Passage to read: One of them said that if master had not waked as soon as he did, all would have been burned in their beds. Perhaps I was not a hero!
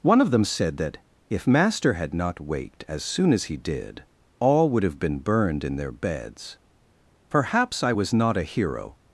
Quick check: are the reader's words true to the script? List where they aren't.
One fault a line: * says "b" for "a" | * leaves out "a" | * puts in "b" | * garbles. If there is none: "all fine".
all fine